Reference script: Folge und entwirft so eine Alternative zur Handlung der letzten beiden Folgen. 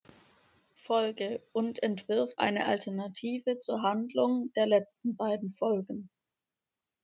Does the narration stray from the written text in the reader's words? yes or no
yes